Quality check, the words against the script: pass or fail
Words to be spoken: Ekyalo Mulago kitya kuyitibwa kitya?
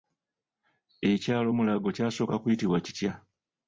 fail